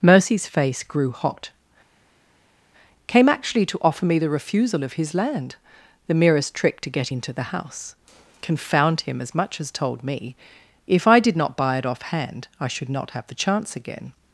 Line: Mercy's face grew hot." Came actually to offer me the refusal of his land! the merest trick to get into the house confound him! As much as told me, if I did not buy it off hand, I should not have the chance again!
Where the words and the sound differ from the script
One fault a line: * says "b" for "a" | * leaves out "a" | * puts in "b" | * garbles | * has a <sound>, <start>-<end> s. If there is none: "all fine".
all fine